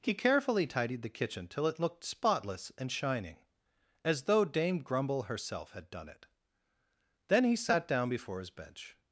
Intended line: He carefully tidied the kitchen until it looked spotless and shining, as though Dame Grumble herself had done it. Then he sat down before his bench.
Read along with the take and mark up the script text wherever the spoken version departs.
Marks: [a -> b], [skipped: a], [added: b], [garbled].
He carefully tidied the kitchen [until -> till] it looked spotless and shining, as though Dame Grumble herself had done it. Then he sat down before his bench.